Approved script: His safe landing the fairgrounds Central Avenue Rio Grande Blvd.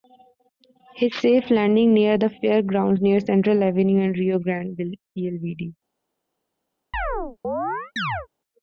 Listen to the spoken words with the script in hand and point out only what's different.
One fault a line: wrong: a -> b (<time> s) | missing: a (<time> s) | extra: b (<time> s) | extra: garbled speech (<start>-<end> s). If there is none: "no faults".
extra: near (1.9 s)
extra: near (3.0 s)
extra: and (4.0 s)